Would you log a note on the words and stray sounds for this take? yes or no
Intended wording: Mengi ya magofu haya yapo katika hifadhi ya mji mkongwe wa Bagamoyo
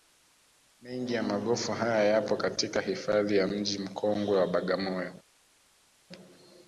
no